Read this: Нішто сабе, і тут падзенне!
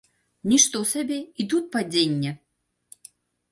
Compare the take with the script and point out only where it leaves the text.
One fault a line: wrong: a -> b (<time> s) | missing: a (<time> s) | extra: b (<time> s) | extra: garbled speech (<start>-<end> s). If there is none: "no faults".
no faults